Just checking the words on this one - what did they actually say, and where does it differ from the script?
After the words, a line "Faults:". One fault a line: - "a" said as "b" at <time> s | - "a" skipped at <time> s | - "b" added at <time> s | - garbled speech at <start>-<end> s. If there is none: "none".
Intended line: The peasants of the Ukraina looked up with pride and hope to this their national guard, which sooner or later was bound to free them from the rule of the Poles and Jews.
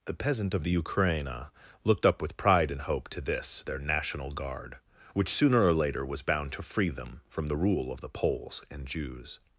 The peasant of the Ukraina looked up with pride and hope to this their national guard, which sooner or later was bound to free them from the rule of the Poles and Jews.
Faults:
- "peasants" said as "peasant" at 0.1 s